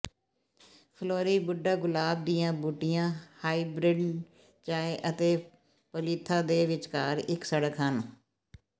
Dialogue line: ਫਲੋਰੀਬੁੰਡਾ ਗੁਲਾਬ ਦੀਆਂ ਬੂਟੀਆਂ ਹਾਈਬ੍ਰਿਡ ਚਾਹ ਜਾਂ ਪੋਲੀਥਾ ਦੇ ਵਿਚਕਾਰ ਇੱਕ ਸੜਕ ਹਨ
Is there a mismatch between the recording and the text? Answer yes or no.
yes